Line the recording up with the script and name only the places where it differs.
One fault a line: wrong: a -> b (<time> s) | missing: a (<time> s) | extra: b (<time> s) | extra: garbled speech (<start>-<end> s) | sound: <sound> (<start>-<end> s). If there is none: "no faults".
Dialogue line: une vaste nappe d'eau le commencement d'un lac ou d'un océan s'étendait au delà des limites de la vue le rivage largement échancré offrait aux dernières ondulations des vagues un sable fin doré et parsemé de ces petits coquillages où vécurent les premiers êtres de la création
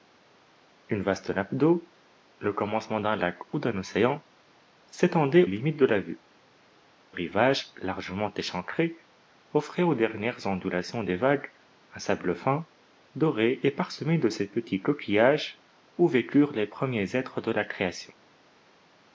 missing: au delà des (5.5 s)
missing: le (6.2 s)